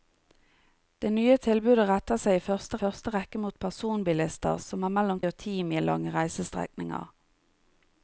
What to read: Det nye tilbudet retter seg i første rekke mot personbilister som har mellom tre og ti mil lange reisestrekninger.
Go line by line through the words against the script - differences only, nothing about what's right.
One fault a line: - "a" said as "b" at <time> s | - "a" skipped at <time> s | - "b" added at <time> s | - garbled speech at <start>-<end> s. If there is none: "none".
- "første" added at 2.8 s
- "tre" skipped at 5.2 s